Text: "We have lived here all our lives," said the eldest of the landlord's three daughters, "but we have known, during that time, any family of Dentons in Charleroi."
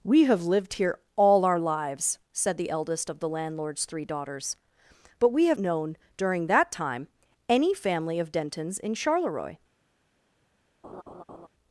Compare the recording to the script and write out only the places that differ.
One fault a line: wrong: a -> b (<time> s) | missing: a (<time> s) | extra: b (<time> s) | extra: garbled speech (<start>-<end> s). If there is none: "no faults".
no faults